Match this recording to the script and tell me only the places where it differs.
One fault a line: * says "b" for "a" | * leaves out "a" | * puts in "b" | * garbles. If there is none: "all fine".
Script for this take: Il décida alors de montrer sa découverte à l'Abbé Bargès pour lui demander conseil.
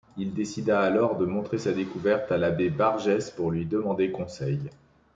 all fine